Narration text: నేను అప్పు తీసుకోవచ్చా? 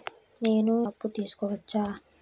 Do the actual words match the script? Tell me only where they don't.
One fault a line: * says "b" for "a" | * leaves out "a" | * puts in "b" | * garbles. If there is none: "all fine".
all fine